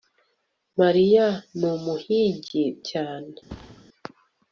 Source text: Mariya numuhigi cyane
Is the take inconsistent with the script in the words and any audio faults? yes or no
yes